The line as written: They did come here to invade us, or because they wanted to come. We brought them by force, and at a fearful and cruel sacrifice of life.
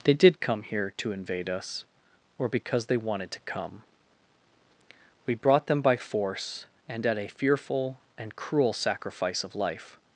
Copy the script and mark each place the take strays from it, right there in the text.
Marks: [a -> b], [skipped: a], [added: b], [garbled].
They did come here to invade us, or because they wanted to come. We brought them by force, and at a fearful and cruel sacrifice of life.